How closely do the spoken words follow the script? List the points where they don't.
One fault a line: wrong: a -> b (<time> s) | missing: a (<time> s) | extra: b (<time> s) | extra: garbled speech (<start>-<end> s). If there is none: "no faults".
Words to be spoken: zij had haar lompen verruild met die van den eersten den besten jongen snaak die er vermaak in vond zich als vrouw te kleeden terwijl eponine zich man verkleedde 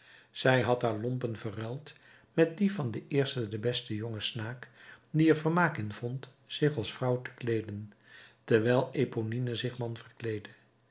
no faults